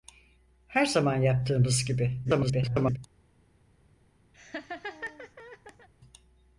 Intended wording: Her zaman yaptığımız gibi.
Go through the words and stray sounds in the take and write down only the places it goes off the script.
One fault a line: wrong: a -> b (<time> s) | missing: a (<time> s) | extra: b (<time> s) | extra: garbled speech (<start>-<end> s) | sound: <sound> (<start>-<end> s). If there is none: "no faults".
extra: garbled speech (2.2-3.0 s)
sound: laugh (4.3-5.9 s)